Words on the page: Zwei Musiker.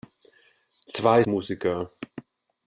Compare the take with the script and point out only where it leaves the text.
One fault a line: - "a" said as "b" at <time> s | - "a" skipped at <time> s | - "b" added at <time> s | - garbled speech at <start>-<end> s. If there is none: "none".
none